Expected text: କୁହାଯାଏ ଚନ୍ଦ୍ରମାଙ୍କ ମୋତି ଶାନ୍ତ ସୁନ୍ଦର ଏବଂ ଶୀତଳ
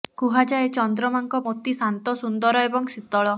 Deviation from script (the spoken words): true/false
false